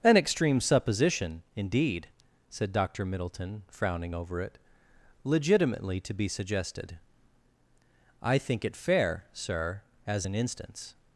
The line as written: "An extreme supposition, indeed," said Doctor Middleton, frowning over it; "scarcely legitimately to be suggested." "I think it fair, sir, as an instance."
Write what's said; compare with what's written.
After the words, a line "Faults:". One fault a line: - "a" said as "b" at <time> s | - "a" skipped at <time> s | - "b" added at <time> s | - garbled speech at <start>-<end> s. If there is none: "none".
"An extreme supposition, indeed," said Doctor Middleton, frowning over it; "legitimately to be suggested." "I think it fair, sir, as an instance."
Faults:
- "scarcely" skipped at 4.6 s